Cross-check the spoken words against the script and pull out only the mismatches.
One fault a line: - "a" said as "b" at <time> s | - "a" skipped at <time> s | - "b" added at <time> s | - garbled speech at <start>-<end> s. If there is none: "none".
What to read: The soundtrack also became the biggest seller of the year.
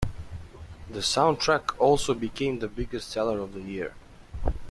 none